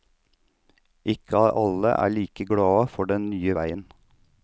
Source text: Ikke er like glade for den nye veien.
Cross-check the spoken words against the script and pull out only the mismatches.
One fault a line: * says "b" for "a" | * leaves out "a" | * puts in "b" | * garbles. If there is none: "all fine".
* puts in "alle"